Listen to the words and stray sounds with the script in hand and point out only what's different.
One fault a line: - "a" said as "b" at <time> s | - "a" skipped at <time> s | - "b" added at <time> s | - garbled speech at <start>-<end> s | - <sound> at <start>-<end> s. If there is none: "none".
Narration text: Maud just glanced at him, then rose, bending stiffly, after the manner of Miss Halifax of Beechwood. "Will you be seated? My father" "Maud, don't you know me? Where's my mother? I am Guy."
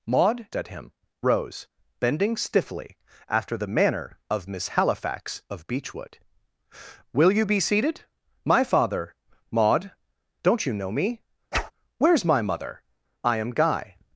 - "just glanced" skipped at 0.5 s
- "then" skipped at 0.9 s
- whoosh at 11.5-11.7 s